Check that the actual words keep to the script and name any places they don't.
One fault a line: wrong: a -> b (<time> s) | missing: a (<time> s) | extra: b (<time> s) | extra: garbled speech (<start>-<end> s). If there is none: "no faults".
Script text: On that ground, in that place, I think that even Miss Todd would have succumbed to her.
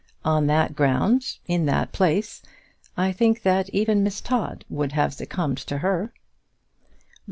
no faults